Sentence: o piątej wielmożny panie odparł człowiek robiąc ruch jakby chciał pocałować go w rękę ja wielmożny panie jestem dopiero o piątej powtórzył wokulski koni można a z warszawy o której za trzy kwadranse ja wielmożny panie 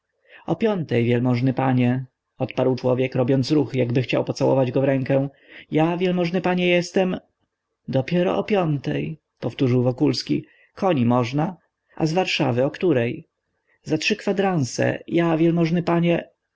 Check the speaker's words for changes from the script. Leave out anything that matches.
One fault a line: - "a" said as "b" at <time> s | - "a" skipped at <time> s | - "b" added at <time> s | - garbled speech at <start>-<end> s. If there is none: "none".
none